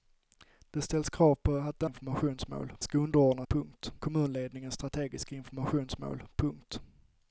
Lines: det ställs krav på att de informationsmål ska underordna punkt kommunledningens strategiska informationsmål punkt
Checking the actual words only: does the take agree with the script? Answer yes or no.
yes